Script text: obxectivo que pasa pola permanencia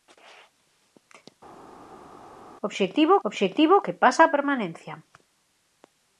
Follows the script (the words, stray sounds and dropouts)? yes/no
no